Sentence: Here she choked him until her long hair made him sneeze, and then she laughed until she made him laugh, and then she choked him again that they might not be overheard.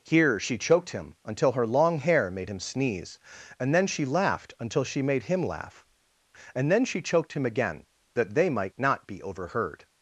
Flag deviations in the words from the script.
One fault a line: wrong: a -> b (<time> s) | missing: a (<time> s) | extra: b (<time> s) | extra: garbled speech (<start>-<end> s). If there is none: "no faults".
no faults